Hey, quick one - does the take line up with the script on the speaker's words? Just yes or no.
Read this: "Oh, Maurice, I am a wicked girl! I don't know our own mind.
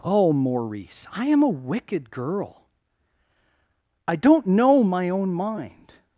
no